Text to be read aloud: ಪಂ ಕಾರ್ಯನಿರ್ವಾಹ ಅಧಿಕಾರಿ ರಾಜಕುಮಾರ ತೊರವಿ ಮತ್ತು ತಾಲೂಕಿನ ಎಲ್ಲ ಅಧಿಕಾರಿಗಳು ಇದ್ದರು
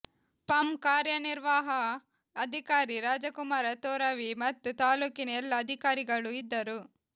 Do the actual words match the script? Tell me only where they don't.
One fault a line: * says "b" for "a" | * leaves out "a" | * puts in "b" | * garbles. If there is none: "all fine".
all fine